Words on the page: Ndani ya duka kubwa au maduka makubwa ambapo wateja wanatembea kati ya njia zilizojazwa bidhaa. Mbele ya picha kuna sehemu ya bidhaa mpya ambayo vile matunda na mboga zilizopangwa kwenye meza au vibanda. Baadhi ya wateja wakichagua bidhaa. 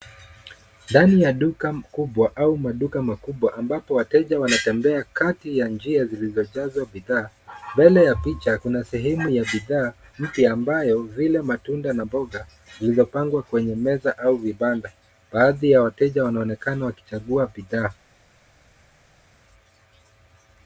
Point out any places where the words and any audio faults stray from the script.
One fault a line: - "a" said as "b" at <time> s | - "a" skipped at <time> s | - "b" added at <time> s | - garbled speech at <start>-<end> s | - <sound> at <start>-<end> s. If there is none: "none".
- "wanaonekana" added at 16.2 s